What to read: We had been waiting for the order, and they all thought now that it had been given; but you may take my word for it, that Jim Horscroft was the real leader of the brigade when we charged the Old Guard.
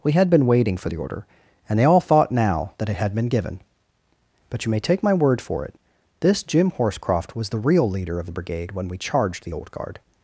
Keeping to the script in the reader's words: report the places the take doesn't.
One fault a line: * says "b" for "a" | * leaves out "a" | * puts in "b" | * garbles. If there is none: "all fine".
* says "this" for "that"